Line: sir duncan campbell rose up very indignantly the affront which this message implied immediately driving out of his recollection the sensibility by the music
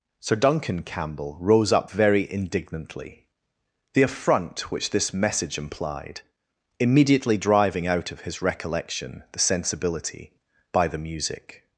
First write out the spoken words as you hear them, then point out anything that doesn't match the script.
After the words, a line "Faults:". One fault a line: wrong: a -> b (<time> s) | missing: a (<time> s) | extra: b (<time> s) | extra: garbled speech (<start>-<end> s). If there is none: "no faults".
sir duncan campbell rose up very indignantly the affront which this message implied immediately driving out of his recollection the sensibility by the music
Faults:
no faults